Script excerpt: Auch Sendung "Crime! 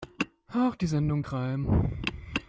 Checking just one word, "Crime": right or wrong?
right